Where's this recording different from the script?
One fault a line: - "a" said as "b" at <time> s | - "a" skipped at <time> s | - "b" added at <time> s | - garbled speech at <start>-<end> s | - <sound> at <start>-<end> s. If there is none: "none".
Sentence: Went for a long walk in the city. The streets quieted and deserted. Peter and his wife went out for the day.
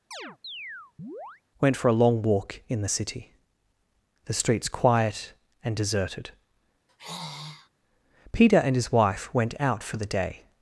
- chirp at 0.1-1.4 s
- "quieted" said as "quiet" at 4.7 s
- sigh at 6.9-7.7 s